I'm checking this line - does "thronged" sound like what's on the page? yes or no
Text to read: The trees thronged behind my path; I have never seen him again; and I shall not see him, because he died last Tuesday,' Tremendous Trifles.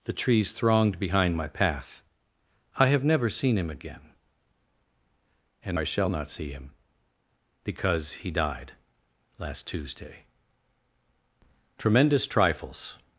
yes